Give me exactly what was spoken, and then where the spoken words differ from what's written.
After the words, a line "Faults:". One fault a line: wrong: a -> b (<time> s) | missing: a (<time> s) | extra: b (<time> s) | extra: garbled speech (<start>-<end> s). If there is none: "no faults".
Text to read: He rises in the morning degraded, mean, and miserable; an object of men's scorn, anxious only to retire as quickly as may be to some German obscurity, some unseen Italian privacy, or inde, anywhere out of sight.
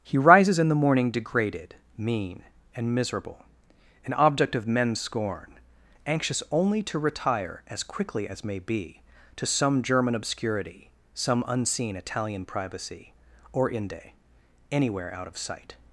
He rises in the morning degraded, mean, and miserable; an object of men's scorn, anxious only to retire as quickly as may be to some German obscurity, some unseen Italian privacy, or inde, anywhere out of sight.
Faults:
no faults